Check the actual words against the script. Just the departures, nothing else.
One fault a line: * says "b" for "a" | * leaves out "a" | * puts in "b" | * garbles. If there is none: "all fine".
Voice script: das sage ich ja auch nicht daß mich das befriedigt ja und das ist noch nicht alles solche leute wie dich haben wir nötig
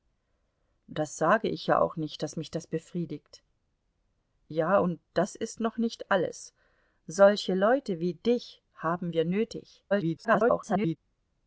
* garbles